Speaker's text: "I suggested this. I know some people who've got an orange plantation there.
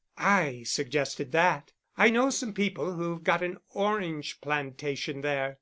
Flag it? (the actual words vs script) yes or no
yes